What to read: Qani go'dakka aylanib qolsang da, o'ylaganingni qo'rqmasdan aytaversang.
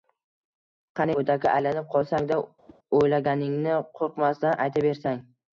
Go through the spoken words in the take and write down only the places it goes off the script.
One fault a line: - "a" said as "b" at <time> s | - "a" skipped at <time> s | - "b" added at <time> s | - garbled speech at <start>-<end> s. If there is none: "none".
none